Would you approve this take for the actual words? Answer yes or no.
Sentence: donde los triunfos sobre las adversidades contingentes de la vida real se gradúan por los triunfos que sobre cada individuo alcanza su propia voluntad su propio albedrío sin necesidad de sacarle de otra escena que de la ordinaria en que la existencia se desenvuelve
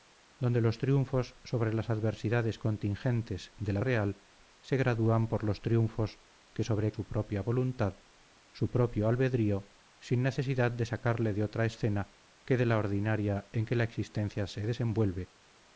no